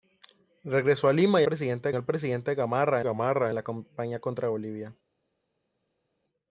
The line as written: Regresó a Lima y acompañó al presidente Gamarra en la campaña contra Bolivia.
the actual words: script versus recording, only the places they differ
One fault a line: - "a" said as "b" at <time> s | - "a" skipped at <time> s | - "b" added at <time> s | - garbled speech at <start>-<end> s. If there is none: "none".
- "acompañó" said as "presidente" at 1.4 s
- "Gamarra" added at 3.0 s